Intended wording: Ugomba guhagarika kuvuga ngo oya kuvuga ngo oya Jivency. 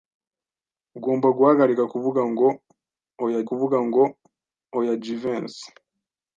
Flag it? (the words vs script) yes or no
no